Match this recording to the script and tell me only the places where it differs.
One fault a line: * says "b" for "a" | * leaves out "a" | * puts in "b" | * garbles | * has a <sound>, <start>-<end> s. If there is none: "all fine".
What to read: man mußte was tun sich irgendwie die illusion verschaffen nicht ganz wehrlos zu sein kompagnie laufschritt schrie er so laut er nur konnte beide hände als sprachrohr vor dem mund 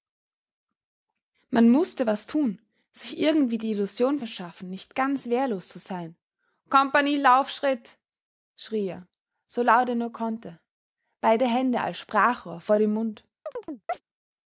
* has a chirp, 13.5-14.0 s